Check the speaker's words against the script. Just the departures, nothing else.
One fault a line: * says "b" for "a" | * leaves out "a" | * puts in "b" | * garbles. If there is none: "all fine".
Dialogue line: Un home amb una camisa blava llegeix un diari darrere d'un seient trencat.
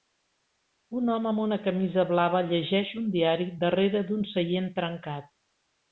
all fine